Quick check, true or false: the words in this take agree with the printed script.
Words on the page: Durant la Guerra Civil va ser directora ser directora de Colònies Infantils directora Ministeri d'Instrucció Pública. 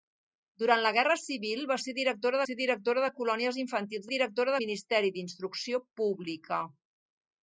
true